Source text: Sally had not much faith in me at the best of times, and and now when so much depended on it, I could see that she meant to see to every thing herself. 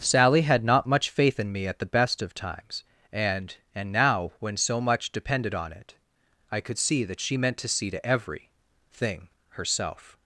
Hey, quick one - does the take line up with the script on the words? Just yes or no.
yes